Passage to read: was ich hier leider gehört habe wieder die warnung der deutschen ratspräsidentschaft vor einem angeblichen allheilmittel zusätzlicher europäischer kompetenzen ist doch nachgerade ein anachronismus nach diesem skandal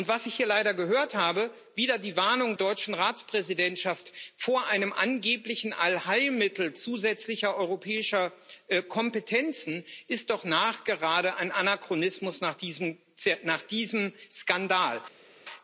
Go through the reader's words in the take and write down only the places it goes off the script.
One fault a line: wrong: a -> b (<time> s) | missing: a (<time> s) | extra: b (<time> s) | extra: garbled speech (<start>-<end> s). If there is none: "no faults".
missing: der (2.5 s)